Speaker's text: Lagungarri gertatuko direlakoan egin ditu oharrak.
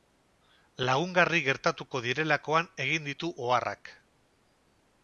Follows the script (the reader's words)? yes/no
yes